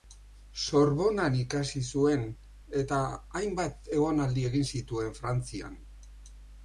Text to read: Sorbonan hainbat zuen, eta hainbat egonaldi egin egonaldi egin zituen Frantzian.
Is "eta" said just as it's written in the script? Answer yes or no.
yes